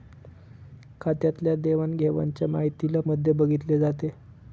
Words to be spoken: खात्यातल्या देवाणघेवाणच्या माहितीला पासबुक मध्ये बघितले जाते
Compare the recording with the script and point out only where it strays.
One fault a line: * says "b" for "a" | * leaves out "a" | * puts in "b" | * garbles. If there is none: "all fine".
* leaves out "पासबुक"